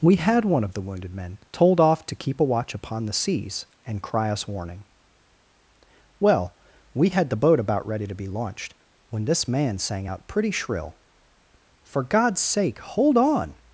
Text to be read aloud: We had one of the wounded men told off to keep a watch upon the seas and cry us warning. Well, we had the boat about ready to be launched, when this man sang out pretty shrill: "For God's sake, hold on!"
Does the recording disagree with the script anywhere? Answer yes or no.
no